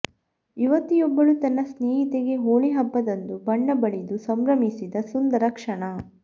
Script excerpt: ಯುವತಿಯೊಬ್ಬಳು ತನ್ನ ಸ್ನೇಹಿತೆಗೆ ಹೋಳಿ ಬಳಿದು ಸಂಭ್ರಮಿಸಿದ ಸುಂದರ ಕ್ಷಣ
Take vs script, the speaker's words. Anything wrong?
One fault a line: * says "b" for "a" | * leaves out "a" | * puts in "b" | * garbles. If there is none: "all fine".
* puts in "ಹಬ್ಬದಂದು ಬಣ್ಣ"